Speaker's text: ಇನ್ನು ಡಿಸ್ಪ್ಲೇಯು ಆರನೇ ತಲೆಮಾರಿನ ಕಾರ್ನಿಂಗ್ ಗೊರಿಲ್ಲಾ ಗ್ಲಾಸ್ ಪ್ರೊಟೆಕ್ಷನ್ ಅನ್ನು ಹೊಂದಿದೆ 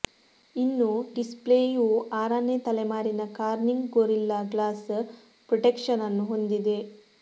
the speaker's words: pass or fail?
pass